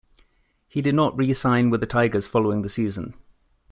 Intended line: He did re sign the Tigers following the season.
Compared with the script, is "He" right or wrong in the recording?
right